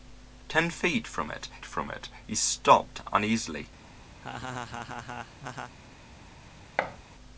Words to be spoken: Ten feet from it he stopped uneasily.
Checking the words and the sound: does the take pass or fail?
fail